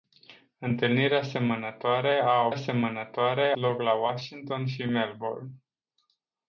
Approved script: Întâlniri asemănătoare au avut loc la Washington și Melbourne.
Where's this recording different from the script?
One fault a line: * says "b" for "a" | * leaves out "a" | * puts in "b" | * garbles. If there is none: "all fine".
* says "asemănătoare" for "avut"